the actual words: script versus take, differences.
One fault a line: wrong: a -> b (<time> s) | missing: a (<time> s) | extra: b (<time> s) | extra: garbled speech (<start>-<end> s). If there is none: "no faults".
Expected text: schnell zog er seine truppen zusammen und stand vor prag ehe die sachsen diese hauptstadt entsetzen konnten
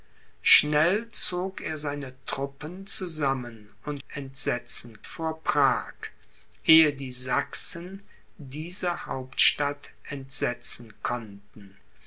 wrong: stand -> entsetzen (4.1 s)